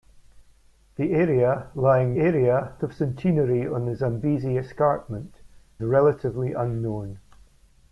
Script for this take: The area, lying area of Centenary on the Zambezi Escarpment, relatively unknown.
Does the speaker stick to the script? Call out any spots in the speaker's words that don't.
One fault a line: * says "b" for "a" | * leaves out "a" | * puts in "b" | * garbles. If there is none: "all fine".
all fine